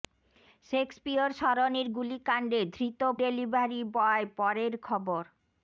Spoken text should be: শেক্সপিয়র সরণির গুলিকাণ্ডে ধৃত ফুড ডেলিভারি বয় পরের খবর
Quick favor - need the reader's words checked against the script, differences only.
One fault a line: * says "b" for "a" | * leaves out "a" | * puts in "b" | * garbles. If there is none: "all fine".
* leaves out "ফুড"